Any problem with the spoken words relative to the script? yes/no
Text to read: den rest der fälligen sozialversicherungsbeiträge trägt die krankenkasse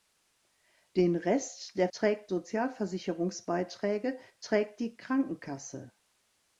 yes